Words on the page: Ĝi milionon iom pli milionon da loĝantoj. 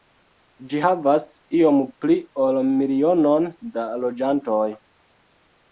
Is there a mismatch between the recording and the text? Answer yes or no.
yes